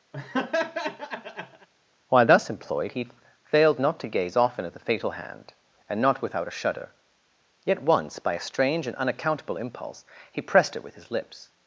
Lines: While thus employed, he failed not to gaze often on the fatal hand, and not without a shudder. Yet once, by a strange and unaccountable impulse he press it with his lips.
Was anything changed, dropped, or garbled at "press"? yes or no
yes